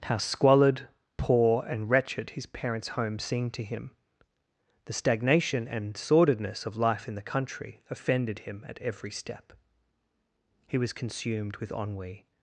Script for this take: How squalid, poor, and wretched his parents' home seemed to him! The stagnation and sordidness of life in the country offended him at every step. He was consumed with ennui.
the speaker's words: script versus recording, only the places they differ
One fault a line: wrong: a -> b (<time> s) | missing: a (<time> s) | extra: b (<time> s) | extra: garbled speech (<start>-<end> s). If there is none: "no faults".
no faults